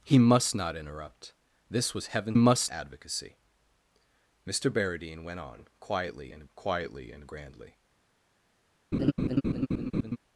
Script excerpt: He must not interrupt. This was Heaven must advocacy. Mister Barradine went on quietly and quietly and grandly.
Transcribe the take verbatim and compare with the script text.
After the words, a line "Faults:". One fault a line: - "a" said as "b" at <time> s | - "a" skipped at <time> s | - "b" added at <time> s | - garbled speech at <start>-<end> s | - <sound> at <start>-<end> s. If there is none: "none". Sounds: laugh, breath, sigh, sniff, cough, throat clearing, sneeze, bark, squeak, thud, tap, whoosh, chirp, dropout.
He must not interrupt. This was Heaven must advocacy. Mister Barradine went on quietly and quietly and grandly.
Faults:
- laugh at 8.9-10.2 s